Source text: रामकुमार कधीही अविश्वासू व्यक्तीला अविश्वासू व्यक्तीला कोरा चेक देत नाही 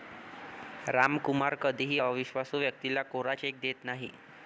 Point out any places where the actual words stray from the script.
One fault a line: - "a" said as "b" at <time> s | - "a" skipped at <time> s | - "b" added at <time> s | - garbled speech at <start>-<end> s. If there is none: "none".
- "अविश्वासू व्यक्तीला" skipped at 3.0 s